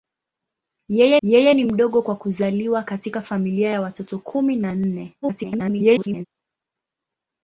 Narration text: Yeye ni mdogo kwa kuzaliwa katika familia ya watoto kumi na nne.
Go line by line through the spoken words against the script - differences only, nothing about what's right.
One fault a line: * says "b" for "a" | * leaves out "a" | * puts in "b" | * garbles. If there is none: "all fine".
* puts in "yeye"
* garbles